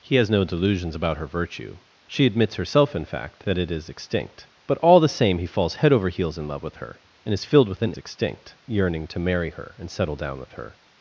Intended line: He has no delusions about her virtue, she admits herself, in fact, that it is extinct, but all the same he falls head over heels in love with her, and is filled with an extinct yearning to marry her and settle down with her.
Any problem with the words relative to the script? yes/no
no